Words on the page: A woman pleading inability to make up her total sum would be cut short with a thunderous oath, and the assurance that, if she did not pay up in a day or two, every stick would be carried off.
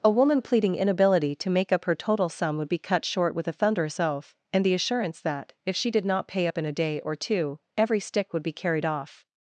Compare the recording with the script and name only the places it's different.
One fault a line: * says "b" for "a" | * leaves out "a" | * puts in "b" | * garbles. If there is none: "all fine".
all fine